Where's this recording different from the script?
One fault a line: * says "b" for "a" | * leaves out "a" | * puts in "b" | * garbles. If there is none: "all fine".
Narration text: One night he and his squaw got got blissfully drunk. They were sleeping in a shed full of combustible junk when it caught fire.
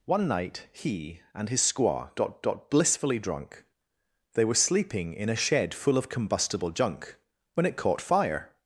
all fine